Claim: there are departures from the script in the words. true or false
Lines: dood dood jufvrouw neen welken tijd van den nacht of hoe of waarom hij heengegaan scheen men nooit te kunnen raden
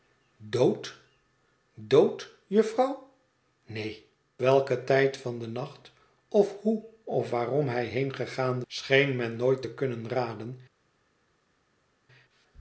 false